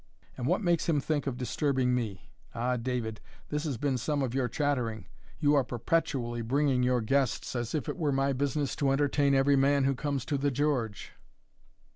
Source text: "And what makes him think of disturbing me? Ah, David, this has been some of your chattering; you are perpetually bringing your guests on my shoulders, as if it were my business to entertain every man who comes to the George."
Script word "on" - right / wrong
wrong